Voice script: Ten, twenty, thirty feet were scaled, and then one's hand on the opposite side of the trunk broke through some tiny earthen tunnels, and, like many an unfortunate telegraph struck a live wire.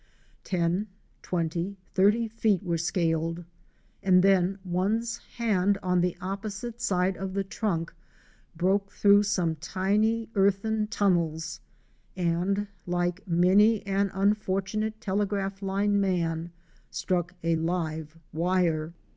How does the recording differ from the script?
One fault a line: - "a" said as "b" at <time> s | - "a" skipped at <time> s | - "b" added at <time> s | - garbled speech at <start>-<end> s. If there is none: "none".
- "line man" added at 15.6 s